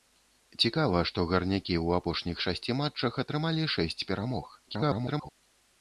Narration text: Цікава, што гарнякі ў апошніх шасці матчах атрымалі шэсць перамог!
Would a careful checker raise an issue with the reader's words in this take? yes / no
yes